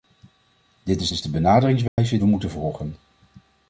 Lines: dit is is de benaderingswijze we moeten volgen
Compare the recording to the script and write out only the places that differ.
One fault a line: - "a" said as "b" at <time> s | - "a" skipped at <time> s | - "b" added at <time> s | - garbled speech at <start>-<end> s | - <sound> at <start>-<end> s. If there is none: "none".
- dropout at 1.9-2.0 s